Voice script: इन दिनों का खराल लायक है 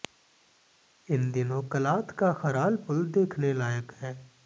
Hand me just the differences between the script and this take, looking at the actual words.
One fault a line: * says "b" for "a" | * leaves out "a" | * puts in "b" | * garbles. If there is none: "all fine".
* puts in "कलाथ"
* puts in "पुल देखने"